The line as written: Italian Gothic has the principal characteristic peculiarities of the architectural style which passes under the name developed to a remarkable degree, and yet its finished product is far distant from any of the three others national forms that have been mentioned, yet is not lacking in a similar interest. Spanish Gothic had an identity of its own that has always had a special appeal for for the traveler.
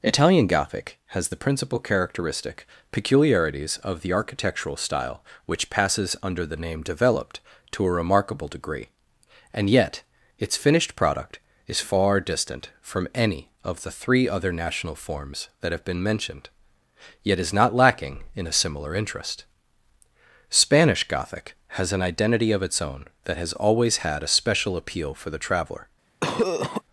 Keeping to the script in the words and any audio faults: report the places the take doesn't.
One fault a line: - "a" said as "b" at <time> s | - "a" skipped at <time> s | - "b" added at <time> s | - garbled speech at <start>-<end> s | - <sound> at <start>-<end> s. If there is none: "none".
- "others" said as "other" at 14.3 s
- "had" said as "has" at 21.8 s
- "for" skipped at 25.3 s
- cough at 26.2-26.8 s